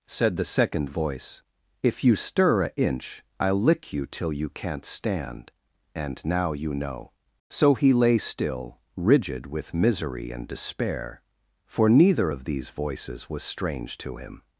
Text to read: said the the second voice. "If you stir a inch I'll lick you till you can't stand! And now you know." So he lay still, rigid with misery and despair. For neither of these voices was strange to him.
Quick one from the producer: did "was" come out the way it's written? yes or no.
yes